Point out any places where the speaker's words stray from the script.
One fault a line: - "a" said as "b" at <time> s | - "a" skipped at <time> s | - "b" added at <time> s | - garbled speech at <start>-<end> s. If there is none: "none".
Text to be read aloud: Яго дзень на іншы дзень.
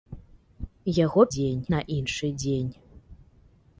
none